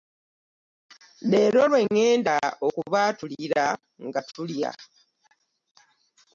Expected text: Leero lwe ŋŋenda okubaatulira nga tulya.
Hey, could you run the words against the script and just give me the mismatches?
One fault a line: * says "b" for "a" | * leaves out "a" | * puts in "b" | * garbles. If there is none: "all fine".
all fine